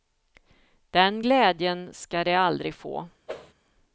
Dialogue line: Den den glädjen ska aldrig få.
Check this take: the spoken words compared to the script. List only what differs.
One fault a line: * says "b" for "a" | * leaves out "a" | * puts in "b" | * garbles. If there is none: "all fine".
* leaves out "den"
* puts in "de"